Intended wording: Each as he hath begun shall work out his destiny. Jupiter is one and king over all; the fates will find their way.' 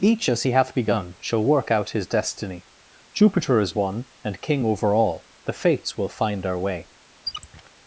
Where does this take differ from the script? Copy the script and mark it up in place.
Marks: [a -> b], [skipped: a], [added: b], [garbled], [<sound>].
Each as he hath begun shall work out his destiny. Jupiter is one and king over all; the fates will find [their -> our] way.' [squeak]